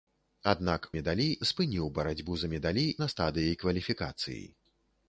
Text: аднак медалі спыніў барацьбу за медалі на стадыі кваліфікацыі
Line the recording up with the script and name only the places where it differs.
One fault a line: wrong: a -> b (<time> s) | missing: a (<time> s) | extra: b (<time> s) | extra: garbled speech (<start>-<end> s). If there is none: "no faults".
no faults